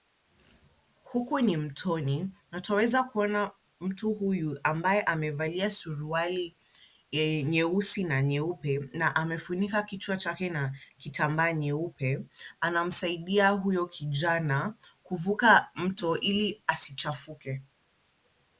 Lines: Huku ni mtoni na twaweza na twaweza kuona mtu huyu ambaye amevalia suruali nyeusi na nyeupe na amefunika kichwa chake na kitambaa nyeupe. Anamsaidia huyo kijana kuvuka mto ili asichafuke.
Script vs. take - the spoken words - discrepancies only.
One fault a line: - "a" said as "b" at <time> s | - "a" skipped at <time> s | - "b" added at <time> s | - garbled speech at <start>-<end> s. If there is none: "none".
- "na twaweza" skipped at 3.0 s